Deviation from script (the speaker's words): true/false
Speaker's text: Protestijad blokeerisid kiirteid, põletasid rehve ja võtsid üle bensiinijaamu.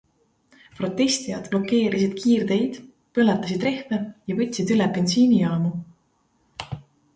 false